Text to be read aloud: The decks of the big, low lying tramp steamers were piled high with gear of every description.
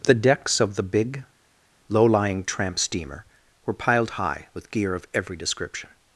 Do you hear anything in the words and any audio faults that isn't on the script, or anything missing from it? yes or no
yes